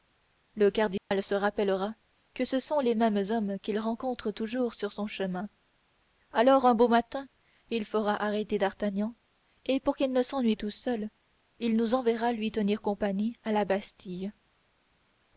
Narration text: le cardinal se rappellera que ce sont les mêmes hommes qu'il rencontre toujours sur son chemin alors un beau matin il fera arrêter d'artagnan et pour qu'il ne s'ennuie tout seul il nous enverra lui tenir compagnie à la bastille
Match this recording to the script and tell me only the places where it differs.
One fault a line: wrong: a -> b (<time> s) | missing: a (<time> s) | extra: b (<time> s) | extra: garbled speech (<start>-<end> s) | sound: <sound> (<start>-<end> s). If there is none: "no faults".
sound: dropout (1.0-1.1 s)